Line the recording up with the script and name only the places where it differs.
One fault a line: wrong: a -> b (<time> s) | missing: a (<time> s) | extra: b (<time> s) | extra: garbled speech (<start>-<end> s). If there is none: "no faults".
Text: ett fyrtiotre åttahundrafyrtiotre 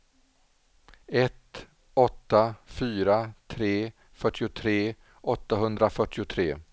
extra: åtta fyra tre (1.9 s)